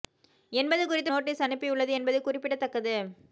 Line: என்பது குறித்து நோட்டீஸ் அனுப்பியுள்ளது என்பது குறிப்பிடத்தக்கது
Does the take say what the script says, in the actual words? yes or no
yes